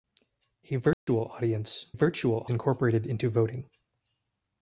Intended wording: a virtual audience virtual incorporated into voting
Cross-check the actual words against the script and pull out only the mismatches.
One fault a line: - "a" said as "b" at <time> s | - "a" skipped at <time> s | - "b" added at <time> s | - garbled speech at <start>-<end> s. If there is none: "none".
none